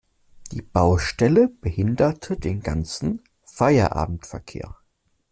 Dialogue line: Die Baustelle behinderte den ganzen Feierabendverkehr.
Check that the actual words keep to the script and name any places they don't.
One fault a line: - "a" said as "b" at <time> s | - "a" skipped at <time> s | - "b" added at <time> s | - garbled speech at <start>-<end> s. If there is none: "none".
none